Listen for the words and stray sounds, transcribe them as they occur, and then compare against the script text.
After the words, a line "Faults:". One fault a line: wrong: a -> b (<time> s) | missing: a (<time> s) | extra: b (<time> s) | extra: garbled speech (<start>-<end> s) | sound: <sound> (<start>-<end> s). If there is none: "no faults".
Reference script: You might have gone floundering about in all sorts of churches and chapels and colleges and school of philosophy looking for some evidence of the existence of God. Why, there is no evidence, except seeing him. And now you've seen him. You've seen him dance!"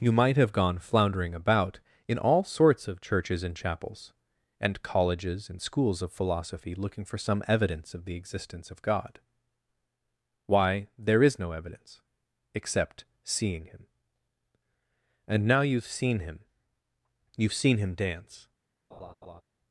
You might have gone floundering about in all sorts of churches and chapels and colleges and schools of philosophy looking for some evidence of the existence of God. Why, there is no evidence, except seeing him. And now you've seen him. You've seen him dance!"
Faults:
wrong: school -> schools (5.6 s)
sound: laugh (18.9-19.4 s)